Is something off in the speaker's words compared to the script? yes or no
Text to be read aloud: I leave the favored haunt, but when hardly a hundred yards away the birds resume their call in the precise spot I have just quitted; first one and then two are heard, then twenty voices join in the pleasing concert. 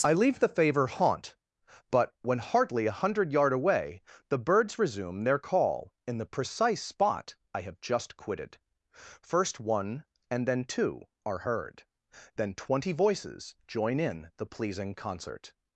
yes